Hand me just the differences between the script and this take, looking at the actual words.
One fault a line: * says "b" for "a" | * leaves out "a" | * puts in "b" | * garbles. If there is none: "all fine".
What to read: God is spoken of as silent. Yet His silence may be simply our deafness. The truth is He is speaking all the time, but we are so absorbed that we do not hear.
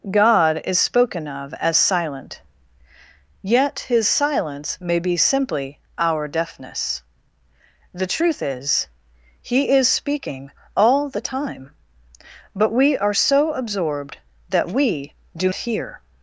* leaves out "not"